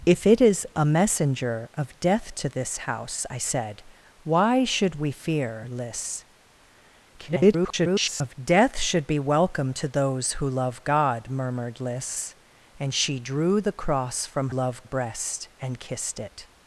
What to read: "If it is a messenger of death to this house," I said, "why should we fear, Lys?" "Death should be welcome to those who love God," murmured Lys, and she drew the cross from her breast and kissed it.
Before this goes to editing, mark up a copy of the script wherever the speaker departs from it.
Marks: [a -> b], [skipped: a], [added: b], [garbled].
"If it is a messenger of death to this house," I said, "why should we fear, Lys?" [garbled] "Death should be welcome to those who love God," murmured Lys, and she drew the cross from [her -> love] breast and kissed it.